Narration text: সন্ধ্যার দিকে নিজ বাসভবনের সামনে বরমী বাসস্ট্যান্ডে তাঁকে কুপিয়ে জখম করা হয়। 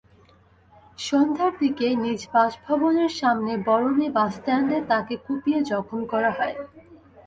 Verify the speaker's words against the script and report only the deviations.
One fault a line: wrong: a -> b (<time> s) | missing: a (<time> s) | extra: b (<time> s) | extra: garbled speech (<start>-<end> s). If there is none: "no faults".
no faults